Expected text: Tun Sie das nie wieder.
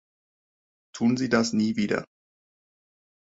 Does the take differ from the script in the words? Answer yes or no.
no